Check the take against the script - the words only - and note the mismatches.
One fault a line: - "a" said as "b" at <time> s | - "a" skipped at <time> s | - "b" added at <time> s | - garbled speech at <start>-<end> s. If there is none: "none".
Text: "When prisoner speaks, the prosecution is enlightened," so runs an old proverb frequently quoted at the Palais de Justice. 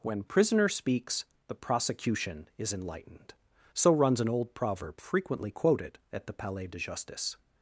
none